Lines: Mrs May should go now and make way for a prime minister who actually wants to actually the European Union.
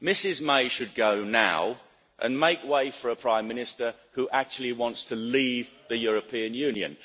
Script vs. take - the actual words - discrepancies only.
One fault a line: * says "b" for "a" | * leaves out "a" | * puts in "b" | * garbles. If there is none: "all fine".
* says "leave" for "actually"